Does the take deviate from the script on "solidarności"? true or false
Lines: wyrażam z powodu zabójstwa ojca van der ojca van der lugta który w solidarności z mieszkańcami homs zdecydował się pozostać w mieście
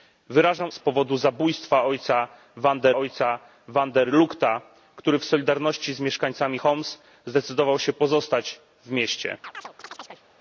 false